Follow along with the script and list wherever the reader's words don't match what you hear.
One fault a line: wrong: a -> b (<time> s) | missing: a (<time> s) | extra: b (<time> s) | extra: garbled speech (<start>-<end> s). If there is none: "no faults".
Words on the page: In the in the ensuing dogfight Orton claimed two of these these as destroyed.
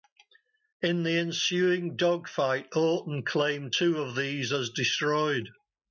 missing: in the (1.1 s)
missing: these (4.5 s)